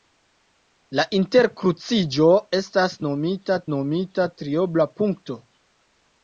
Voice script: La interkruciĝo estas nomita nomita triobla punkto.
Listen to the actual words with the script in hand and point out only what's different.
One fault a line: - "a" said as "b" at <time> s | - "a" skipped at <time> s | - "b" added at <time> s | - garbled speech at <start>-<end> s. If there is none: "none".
none